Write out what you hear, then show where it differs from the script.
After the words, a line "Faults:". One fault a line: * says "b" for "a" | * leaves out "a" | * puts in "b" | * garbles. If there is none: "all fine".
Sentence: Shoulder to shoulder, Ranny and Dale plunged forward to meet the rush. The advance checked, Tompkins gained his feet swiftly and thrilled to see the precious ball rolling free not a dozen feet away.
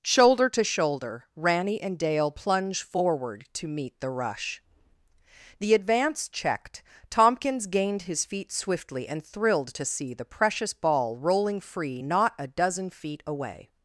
Shoulder to shoulder, Ranny and Dale plunge forward to meet the rush. The advance checked, Tompkins gained his feet swiftly and thrilled to see the precious ball rolling free not a dozen feet away.
Faults:
* says "plunge" for "plunged"